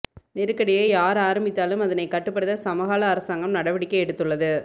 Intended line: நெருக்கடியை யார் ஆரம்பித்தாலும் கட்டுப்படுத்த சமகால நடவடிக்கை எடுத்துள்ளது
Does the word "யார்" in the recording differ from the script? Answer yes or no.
no